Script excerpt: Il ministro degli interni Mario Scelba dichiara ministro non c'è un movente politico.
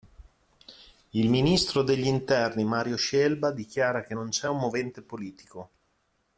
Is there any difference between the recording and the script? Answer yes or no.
yes